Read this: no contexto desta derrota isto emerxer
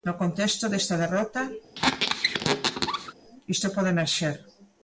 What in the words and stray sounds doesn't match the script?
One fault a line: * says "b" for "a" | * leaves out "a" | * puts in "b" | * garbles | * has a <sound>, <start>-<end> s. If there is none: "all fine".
* has a squeak, 1.7-3.1 s
* puts in "pode"